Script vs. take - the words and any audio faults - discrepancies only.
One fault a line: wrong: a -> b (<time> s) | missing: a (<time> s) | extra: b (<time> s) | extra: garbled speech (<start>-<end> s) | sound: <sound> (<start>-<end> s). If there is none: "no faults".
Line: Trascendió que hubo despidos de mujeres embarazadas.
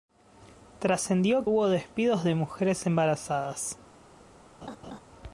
missing: que (1.4 s)
sound: laugh (4.6-5.0 s)